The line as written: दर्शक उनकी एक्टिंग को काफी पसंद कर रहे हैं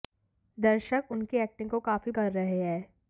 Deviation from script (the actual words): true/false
true